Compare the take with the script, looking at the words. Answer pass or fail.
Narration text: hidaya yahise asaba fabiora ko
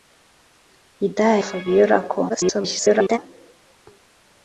fail